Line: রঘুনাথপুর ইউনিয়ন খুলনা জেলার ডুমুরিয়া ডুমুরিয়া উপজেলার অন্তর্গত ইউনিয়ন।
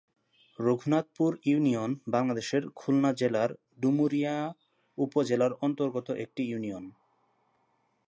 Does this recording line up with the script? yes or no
no